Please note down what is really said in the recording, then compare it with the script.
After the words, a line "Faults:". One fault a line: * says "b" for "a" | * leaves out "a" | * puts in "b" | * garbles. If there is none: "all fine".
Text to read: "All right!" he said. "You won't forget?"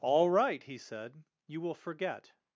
"All right!" he said. "You will forget?"
Faults:
* says "will" for "won't"